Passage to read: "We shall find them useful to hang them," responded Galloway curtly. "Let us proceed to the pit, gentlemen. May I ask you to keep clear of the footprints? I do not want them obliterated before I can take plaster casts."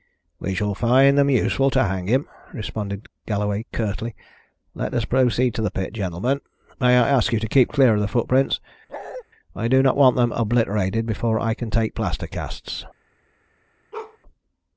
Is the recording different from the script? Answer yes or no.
yes